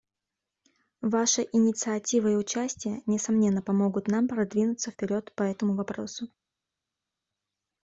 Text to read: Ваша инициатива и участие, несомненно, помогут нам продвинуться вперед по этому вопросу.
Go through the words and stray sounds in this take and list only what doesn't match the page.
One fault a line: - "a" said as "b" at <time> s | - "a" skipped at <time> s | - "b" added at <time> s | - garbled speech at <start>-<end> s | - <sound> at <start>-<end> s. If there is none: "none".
none